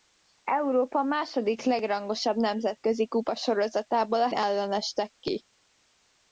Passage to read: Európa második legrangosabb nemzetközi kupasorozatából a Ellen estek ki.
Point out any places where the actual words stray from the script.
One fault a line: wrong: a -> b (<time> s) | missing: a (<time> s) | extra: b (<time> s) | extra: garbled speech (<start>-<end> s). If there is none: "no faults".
no faults